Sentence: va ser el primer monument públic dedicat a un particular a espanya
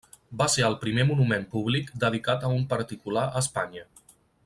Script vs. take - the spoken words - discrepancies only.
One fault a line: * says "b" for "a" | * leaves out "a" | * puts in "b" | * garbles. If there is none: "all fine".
all fine